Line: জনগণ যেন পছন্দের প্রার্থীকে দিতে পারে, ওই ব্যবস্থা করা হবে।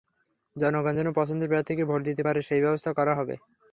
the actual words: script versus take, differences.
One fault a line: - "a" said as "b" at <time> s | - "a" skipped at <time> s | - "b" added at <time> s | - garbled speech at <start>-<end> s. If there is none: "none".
- "ভোট" added at 1.9 s
- "ওই" said as "সেই" at 2.4 s